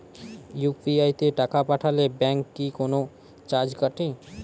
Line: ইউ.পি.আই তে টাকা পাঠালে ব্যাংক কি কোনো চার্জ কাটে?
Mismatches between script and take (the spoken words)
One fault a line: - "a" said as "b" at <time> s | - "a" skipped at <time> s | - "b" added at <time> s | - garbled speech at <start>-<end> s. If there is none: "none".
none